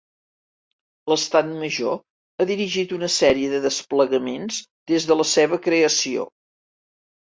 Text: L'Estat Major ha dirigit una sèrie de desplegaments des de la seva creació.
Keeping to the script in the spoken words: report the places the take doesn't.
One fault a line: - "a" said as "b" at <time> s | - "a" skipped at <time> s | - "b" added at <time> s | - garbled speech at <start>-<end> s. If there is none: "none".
none